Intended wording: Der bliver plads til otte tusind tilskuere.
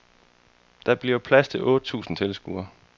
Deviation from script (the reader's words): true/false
false